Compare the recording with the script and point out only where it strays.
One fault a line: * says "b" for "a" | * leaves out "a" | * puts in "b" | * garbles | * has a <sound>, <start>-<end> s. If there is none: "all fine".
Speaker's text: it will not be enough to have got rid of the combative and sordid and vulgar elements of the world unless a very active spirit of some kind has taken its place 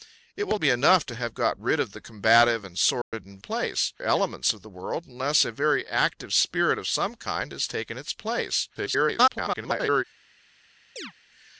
* leaves out "not"
* has a dropout, 3.0-3.1 s
* says "place" for "vulgar"
* garbles
* has a chirp, 11.0-11.1 s